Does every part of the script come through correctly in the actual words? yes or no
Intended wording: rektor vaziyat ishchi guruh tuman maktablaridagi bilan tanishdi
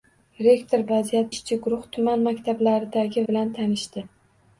yes